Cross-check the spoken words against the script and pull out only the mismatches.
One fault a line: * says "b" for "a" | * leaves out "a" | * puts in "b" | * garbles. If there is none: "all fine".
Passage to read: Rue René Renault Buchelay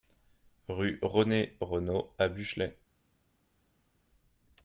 * puts in "à"